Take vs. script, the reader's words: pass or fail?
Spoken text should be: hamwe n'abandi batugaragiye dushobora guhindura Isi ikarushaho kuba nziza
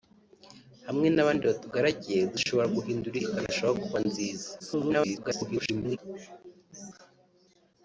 fail